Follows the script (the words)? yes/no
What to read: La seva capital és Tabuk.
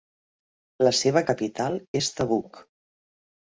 yes